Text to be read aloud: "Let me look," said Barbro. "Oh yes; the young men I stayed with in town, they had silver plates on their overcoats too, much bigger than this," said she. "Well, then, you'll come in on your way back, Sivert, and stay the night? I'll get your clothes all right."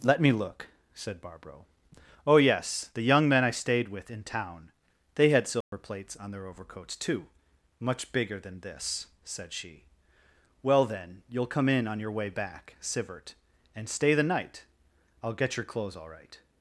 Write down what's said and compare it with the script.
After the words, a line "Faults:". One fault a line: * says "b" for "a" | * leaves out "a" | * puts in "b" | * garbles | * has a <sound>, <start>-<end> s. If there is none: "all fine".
"Let me look," said Barbro. "Oh yes; the young men I stayed with in town, they had silver plates on their overcoats too, much bigger than this," said she. "Well, then, you'll come in on your way back, Sivert, and stay the night? I'll get your clothes all right."
Faults:
* has a dropout, 5.6-5.7 s